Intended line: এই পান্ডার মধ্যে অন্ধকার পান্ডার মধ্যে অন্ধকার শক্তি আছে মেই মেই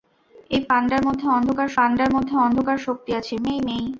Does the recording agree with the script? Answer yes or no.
yes